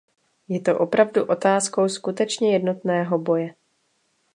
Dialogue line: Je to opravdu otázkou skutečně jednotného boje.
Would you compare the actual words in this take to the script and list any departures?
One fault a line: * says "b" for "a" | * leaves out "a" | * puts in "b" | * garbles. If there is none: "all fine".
all fine